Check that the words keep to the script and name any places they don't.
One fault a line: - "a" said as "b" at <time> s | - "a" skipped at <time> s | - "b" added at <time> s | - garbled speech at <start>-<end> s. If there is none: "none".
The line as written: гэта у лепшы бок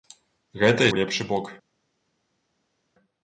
none